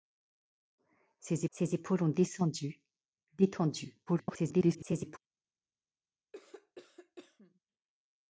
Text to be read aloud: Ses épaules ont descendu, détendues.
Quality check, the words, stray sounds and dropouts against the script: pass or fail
fail